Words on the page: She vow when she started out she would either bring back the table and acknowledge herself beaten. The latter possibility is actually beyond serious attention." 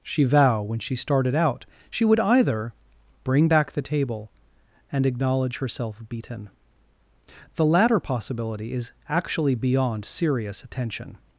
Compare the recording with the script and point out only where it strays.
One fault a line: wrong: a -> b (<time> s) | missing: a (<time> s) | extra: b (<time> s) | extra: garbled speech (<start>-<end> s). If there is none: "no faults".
no faults